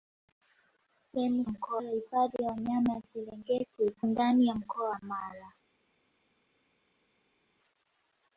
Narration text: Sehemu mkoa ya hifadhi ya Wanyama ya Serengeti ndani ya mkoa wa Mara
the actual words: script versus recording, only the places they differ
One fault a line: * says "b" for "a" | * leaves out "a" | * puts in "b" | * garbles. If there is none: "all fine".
all fine